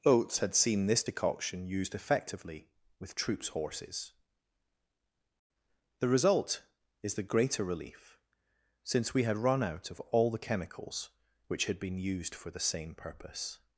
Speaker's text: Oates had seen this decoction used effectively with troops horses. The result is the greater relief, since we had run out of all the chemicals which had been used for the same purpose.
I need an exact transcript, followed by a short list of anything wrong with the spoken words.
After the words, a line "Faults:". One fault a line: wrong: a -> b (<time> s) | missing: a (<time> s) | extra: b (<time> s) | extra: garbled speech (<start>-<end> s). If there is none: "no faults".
Oates had seen this decoction used effectively with troops horses. The result is the greater relief, since we had run out of all the chemicals which had been used for the same purpose.
Faults:
no faults